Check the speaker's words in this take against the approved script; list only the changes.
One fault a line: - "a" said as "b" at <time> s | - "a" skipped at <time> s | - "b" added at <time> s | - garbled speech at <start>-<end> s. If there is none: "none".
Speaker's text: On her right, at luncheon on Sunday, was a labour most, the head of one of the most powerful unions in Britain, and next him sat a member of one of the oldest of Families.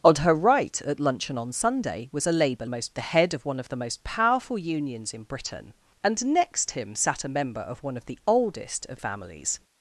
none